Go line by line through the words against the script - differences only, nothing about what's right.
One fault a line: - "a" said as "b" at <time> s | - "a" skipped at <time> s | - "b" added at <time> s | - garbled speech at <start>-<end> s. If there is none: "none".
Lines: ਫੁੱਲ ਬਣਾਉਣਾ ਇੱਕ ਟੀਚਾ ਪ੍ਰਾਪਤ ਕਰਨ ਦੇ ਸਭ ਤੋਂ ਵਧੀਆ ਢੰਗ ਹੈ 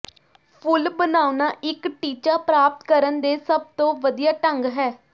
none